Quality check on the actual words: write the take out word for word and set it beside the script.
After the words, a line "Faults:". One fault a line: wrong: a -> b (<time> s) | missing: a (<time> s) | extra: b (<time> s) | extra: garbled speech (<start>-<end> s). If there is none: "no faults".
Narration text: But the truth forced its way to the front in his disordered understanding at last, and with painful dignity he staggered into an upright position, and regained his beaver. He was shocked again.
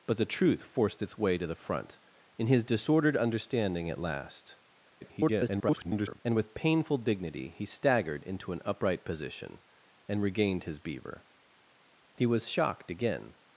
But the truth forced its way to the front in his disordered understanding at last, [garbled] and with painful dignity he staggered into an upright position, and regained his beaver. He was shocked again.
Faults:
extra: garbled speech (5.0-6.2 s)